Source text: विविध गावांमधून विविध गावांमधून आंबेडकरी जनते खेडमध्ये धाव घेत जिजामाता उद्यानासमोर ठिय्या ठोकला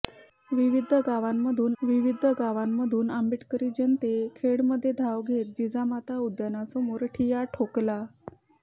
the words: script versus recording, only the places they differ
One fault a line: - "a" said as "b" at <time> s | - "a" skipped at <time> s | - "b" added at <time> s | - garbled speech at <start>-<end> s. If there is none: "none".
none